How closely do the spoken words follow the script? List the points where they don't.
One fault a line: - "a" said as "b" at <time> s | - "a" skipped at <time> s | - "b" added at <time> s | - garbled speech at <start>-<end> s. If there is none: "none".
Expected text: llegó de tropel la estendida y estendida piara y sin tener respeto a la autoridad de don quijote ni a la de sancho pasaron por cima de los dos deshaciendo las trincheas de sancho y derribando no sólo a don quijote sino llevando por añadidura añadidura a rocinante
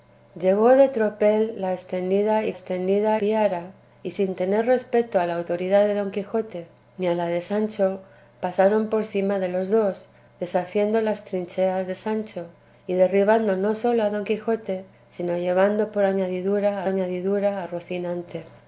none